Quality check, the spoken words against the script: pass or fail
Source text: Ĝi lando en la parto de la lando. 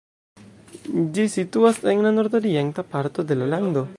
fail